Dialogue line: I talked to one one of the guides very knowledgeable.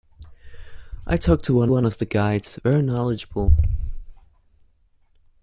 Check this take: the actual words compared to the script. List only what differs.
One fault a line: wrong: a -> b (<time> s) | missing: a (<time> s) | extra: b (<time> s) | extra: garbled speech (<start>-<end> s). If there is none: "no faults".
no faults